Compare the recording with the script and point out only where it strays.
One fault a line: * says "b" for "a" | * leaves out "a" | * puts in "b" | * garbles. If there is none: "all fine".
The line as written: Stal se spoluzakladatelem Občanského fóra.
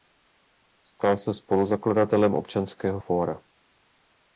all fine